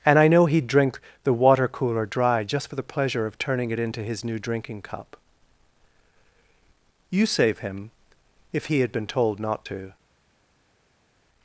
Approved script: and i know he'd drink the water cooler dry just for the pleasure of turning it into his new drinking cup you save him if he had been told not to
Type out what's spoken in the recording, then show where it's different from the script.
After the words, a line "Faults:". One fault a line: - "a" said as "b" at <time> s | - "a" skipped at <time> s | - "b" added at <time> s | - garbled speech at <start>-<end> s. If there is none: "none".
and i know he'd drink the water cooler dry just for the pleasure of turning it into his new drinking cup you save him if he had been told not to
Faults:
none